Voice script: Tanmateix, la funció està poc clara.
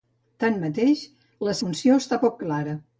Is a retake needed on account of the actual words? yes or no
no